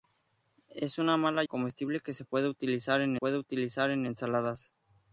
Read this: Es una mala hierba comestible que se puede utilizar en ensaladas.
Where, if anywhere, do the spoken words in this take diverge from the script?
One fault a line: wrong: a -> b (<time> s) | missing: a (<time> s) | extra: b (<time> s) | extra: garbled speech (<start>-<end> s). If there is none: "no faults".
missing: hierba (1.4 s)
extra: puede utilizar en (3.1 s)